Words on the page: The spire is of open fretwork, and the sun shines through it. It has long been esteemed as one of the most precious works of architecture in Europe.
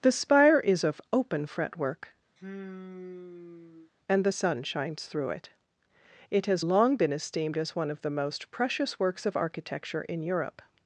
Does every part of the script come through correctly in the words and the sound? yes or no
no